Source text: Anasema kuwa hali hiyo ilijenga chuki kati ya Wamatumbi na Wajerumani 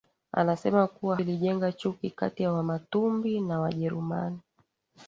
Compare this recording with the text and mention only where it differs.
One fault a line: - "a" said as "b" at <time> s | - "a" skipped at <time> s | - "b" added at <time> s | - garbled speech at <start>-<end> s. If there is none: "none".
- "hali hiyo" skipped at 1.2 s